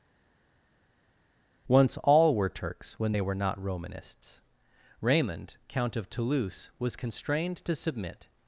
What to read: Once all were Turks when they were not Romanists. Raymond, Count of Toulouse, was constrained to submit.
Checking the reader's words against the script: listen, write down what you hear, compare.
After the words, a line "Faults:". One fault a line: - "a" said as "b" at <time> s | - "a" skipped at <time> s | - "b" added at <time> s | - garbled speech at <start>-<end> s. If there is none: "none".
Once all were Turks when they were not Romanists. Raymond, Count of Toulouse, was constrained to submit.
Faults:
none